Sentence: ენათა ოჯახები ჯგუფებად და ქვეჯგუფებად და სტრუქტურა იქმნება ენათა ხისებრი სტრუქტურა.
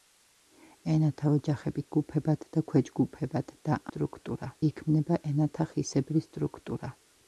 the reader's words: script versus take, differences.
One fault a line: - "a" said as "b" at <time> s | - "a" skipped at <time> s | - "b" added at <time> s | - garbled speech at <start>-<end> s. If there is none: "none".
none